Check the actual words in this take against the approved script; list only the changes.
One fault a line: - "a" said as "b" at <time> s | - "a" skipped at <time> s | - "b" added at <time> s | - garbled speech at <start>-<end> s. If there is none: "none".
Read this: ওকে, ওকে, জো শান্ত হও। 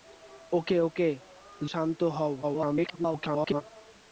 - "জো" skipped at 1.1 s
- garbled speech at 2.4-3.6 s